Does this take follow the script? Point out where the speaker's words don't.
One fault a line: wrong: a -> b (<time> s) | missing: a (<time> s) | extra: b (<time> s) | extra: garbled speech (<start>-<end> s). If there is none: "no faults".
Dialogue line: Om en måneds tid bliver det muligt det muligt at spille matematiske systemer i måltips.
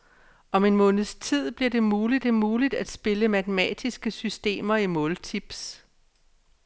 no faults